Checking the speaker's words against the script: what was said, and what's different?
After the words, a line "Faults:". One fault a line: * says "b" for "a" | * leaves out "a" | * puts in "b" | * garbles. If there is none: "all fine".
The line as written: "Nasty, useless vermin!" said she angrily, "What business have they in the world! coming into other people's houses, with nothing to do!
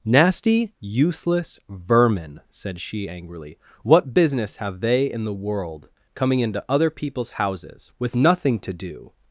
"Nasty, useless vermin!" said she angrily, "What business have they in the world! coming into other people's houses, with nothing to do!
Faults:
all fine